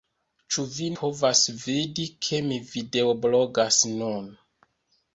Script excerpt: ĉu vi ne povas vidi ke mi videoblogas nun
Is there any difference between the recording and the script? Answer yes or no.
yes